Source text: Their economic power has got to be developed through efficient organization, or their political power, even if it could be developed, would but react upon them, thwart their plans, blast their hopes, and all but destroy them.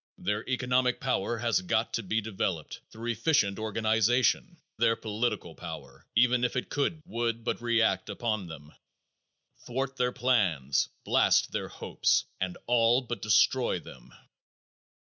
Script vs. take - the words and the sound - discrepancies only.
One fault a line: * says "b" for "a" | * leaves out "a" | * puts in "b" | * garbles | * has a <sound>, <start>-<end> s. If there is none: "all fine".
* leaves out "or"
* leaves out "be developed"